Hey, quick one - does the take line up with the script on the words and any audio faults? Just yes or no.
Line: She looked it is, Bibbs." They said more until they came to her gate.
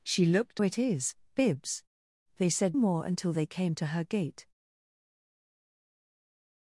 yes